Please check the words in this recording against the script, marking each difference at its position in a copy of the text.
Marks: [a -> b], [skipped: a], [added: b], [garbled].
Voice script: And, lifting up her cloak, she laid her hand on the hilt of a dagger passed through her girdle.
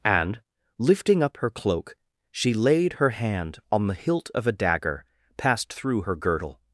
And, lifting up her cloak, she laid her hand on the hilt of a dagger passed through her girdle.